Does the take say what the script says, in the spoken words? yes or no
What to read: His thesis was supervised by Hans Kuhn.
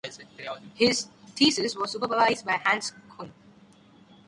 yes